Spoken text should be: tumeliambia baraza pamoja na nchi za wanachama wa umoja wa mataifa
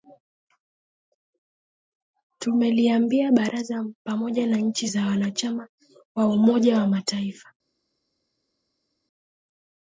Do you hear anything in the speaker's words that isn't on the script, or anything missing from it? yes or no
no